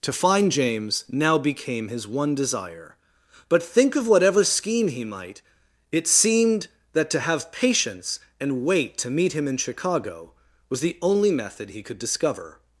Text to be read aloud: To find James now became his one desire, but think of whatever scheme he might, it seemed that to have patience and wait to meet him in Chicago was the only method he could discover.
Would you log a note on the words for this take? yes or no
no